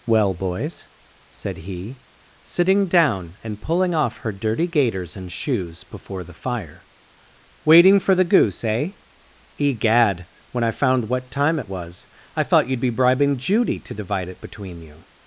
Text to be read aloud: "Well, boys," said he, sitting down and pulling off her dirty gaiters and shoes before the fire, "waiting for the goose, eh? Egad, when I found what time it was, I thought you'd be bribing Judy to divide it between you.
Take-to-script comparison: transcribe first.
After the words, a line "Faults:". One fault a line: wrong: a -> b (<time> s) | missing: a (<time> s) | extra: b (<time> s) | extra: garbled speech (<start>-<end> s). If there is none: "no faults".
"Well, boys," said he, sitting down and pulling off her dirty gaiters and shoes before the fire, "waiting for the goose, eh? Egad, when I found what time it was, I thought you'd be bribing Judy to divide it between you.
Faults:
no faults